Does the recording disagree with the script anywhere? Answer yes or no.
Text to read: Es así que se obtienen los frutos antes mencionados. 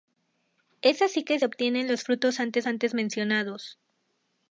yes